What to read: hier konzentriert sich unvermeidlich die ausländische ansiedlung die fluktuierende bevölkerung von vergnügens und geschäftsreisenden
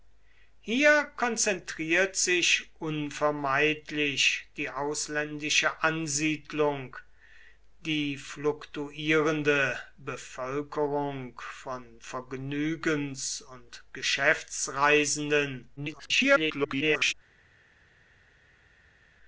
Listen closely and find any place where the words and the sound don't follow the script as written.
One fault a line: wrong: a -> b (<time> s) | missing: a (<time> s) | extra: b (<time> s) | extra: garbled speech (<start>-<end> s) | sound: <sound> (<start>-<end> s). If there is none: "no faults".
extra: garbled speech (15.8-17.1 s)